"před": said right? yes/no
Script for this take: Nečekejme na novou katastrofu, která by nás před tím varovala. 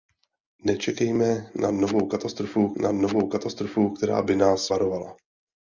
no